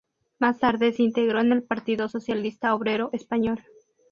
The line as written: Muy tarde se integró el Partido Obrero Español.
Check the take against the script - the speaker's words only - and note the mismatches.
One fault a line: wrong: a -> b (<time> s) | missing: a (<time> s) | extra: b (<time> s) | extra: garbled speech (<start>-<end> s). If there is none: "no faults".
wrong: Muy -> Más (0.4 s)
extra: en (1.4 s)
extra: Socialista (2.1 s)